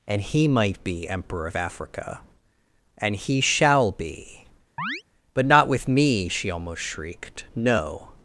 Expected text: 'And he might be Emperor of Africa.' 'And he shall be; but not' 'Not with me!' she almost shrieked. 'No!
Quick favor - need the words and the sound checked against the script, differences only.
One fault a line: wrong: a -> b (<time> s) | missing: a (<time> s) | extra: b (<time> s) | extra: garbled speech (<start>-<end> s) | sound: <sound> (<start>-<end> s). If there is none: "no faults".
sound: chirp (4.8-5.0 s)
missing: Not (5.7 s)